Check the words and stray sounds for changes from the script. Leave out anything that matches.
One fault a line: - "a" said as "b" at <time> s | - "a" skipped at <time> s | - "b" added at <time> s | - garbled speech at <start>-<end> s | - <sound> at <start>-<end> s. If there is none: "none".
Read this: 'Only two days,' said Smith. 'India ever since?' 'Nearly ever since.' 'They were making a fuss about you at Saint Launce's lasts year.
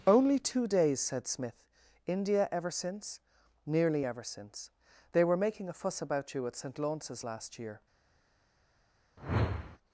- "lasts" said as "last" at 7.2 s
- whoosh at 9.2-9.8 s